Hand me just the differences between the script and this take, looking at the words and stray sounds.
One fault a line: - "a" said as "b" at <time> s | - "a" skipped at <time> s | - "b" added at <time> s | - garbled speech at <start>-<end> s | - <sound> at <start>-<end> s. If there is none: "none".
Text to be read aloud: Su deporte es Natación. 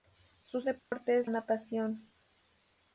- dropout at 0.8-0.9 s